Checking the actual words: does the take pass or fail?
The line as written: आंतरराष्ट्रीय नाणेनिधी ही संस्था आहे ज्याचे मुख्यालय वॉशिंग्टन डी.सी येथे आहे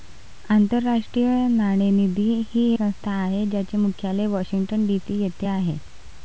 pass